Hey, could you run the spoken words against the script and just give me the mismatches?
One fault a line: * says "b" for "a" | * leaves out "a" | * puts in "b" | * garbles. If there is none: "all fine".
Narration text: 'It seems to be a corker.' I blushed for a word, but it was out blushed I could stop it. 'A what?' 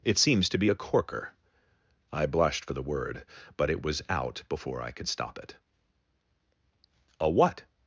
* says "the" for "a"
* says "before" for "blushed"